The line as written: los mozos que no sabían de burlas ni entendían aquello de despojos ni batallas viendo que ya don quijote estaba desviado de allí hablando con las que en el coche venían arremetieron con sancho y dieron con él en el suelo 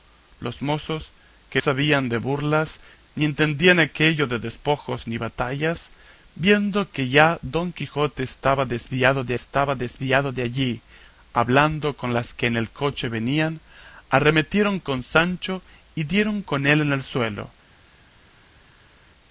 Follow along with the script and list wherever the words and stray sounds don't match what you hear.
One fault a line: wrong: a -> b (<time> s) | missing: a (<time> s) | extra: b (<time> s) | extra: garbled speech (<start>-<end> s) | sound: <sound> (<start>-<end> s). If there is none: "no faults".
missing: no (1.6 s)
extra: estaba desviado de (9.3 s)